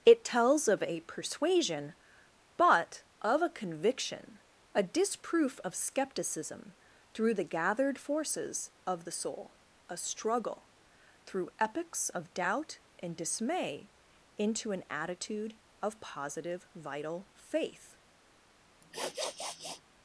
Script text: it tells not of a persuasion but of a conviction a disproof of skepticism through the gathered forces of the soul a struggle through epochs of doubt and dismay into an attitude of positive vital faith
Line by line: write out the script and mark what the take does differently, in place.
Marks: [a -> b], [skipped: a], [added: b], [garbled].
it tells [skipped: not] of a persuasion but of a conviction a disproof of skepticism through the gathered forces of the soul a struggle through epochs of doubt and dismay into an attitude of positive vital faith